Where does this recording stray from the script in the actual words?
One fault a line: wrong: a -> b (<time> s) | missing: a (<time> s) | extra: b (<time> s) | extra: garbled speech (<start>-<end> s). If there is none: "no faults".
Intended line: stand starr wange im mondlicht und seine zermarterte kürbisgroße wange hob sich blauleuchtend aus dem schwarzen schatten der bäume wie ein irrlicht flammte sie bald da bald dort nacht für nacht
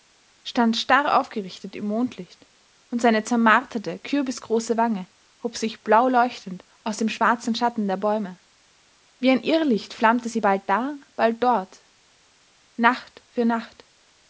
wrong: wange -> aufgerichtet (1.2 s)